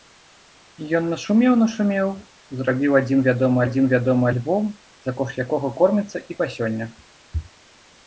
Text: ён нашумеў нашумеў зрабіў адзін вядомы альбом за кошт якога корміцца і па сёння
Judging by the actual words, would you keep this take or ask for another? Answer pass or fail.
fail